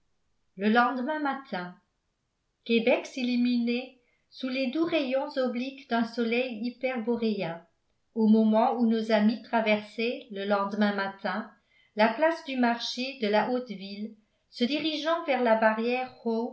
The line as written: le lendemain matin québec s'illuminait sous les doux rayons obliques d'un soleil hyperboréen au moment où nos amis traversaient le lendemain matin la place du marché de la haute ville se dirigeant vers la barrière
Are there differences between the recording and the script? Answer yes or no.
no